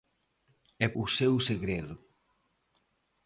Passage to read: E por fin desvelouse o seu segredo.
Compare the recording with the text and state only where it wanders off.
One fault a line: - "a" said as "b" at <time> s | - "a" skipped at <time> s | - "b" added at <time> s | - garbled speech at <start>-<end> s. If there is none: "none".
- "por fin desvelouse" skipped at 0.9 s